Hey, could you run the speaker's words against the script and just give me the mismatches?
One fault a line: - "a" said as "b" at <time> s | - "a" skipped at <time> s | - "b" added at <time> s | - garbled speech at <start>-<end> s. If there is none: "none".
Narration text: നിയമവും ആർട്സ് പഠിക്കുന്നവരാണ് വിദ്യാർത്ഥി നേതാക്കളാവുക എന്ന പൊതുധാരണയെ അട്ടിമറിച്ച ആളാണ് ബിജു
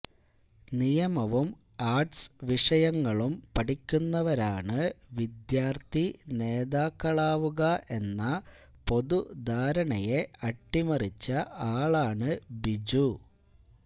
- "വിഷയങ്ങളും" added at 2.4 s